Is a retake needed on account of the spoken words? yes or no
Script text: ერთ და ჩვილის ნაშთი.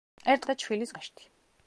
no